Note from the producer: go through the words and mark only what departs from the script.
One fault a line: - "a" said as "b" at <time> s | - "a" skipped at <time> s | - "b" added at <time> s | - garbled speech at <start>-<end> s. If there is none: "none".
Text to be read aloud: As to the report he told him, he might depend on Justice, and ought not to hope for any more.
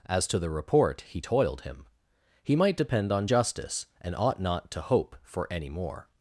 - "told" said as "toiled" at 1.2 s